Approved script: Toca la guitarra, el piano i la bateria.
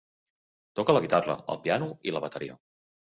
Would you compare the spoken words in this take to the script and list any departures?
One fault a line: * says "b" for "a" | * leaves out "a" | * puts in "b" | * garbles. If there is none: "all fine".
all fine